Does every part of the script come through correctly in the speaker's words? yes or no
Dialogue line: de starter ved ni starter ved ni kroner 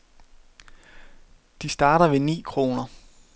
no